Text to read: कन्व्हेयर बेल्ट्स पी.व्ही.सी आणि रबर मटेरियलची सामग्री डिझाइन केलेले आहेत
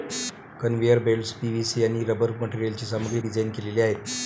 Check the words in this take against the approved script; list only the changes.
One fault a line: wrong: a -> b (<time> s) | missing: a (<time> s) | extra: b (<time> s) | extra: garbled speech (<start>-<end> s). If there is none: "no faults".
no faults